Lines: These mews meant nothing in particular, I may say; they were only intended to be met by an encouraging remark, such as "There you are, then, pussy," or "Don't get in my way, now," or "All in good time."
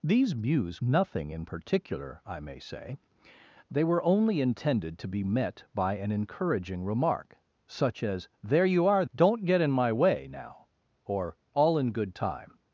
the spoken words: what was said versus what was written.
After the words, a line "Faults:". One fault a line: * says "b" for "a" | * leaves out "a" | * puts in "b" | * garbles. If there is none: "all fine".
These mews nothing in particular, I may say; they were only intended to be met by an encouraging remark, such as "There you are, "Don't get in my way, now," or "All in good time."
Faults:
* leaves out "meant"
* leaves out "then pussy or"